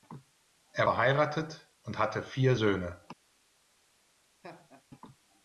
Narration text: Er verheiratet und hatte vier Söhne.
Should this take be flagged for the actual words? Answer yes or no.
no